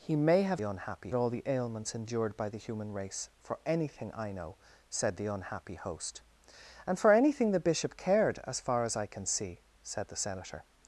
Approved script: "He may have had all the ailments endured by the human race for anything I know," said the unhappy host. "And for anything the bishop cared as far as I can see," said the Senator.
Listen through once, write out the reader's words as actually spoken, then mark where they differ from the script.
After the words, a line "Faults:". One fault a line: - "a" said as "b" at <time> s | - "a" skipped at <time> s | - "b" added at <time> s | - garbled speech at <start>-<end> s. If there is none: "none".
"He may have unhappy all the ailments endured by the human race for anything I know," said the unhappy host. "And for anything the bishop cared as far as I can see," said the Senator.
Faults:
- "had" said as "unhappy" at 0.6 s